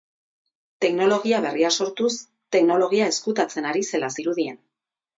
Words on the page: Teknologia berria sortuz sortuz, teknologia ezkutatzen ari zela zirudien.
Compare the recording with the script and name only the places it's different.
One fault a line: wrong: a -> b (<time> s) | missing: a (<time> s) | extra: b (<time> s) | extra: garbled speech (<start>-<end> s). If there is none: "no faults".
missing: sortuz (2.1 s)